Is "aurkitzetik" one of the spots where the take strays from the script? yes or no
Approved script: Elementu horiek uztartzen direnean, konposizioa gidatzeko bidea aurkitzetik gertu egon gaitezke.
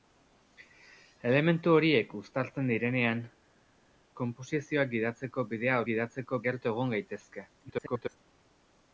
yes